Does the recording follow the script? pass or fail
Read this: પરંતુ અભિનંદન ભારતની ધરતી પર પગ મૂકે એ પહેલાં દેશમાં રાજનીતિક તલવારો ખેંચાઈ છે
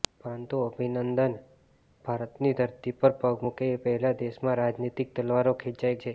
pass